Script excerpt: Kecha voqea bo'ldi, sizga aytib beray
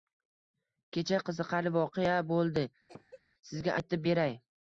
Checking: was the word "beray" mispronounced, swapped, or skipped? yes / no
no